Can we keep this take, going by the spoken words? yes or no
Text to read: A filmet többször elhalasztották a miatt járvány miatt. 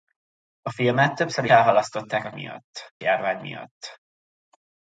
yes